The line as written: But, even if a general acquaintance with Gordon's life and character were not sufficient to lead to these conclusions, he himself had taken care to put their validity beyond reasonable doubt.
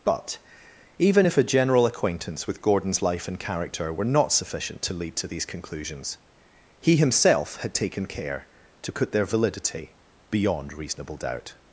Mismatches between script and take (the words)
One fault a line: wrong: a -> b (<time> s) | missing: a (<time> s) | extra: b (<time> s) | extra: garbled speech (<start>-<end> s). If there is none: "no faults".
no faults